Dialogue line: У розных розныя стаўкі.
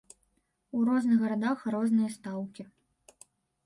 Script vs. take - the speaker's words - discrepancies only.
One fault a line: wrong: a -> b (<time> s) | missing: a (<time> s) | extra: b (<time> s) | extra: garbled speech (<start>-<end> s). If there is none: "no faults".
extra: гарадах (1.2 s)